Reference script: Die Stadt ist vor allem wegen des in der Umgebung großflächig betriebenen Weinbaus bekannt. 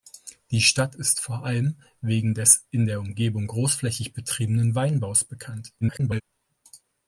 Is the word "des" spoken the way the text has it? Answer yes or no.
yes